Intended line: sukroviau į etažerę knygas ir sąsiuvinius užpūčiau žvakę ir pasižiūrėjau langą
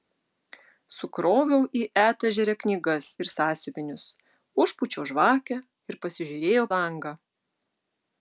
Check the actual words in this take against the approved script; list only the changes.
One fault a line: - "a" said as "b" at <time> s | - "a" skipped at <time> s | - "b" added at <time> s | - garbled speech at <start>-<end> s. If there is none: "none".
none